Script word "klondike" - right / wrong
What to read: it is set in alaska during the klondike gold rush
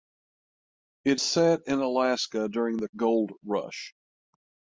wrong